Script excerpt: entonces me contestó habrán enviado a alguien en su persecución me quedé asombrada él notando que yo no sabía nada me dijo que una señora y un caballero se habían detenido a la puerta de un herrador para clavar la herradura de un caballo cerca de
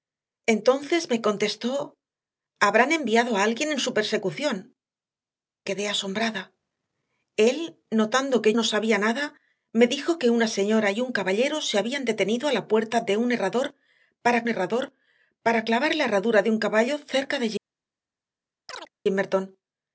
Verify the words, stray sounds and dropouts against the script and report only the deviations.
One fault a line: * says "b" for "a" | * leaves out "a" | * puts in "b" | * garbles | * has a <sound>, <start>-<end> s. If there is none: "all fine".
* leaves out "me"
* leaves out "yo"
* puts in "herrador para"
* has a chirp, 18.7-18.9 s